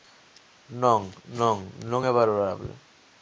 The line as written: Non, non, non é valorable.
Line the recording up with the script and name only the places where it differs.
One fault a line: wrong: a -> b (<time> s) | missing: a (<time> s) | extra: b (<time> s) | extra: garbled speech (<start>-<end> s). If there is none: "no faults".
no faults